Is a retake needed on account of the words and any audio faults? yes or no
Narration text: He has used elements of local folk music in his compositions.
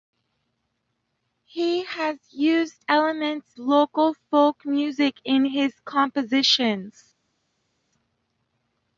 yes